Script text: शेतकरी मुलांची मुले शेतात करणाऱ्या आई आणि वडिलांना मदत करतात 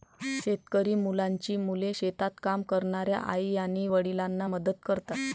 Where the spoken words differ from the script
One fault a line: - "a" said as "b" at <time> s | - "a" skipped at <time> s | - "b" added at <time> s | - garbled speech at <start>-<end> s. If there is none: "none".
- "काम" added at 2.4 s